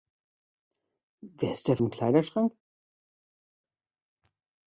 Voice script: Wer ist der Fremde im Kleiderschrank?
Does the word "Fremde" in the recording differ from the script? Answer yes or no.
yes